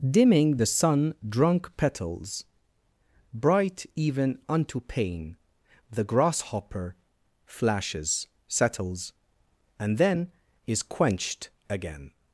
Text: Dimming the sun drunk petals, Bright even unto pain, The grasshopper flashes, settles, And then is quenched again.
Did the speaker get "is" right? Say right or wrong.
right